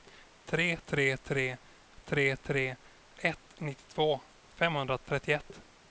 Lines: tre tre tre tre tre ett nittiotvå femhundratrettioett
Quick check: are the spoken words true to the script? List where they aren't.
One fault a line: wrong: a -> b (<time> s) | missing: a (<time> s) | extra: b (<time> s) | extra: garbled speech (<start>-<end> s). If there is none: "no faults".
no faults